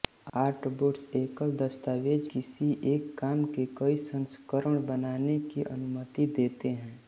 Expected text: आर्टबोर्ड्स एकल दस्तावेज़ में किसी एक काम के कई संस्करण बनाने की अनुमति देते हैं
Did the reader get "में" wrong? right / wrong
wrong